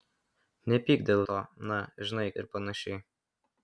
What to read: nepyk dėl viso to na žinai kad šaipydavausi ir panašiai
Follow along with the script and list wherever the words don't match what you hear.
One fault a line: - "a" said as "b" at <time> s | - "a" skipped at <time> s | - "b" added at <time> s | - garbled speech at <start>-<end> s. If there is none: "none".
- "viso" skipped at 1.2 s
- "kad šaipydavausi" skipped at 2.3 s